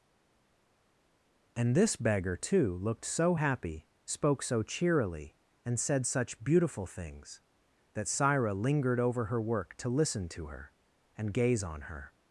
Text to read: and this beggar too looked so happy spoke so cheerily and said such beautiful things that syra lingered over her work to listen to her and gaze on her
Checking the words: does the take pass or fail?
pass